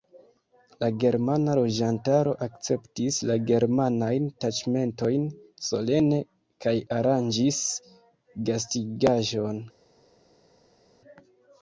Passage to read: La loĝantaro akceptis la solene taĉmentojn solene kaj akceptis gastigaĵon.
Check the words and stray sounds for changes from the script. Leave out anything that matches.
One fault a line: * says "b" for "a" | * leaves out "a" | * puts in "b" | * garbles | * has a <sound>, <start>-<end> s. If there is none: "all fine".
* puts in "germana"
* says "germanajn" for "solene"
* says "aranĝis" for "akceptis"